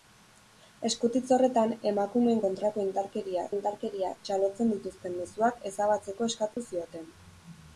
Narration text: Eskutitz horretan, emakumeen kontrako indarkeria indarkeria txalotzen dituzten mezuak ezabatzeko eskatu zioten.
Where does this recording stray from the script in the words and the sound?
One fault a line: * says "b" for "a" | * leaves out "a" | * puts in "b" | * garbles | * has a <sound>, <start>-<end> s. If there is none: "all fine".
* has a dropout, 6.5-6.6 s